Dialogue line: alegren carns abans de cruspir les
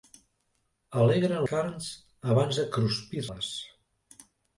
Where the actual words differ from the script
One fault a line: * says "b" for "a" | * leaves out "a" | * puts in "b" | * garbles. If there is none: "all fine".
all fine